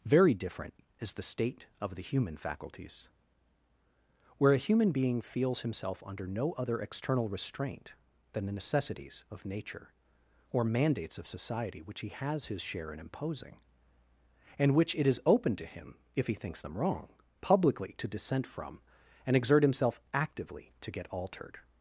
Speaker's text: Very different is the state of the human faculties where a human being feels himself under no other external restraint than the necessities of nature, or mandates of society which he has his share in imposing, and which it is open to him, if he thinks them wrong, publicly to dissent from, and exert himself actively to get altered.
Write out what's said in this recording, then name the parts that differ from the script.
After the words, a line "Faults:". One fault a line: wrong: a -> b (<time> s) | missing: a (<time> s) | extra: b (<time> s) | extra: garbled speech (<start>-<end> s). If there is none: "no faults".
Very different is the state of the human faculties where a human being feels himself under no other external restraint than the necessities of nature, or mandates of society which he has his share in imposing, and which it is open to him, if he thinks them wrong, publicly to dissent from, and exert himself actively to get altered.
Faults:
no faults